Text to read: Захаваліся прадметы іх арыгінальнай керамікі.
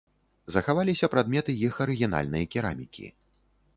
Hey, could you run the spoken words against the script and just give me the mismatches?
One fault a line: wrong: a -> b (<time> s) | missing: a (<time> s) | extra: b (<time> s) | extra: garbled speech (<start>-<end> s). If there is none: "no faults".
no faults